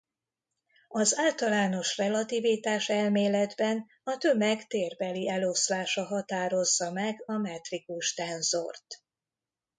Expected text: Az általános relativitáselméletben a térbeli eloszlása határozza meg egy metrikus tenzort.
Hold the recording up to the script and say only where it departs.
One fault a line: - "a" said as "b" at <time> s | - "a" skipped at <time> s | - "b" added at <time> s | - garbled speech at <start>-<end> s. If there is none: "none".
- "tömeg" added at 4.2 s
- "egy" said as "a" at 7.2 s